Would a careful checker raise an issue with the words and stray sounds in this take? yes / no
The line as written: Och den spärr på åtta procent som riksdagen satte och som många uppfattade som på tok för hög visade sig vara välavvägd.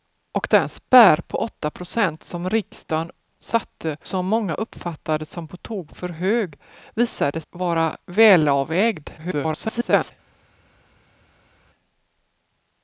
yes